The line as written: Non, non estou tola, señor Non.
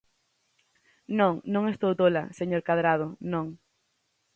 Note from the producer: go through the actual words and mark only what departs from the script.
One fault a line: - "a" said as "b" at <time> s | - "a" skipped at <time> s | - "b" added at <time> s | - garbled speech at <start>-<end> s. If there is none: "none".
- "Cadrado" added at 2.7 s